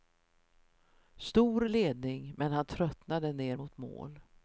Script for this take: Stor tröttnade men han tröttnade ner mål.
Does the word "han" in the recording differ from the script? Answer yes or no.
no